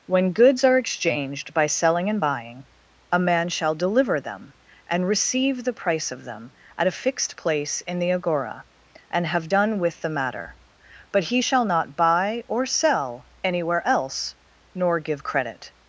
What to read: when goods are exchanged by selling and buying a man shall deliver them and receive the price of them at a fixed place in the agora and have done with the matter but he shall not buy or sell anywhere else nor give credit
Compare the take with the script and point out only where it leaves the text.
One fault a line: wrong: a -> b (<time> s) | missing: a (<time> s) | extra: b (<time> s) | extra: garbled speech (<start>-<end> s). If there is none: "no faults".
no faults